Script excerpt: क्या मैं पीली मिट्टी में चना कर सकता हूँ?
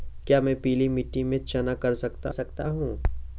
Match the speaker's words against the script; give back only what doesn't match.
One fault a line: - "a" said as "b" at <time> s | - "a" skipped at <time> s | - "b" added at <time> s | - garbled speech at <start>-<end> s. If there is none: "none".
- "सकता" added at 2.3 s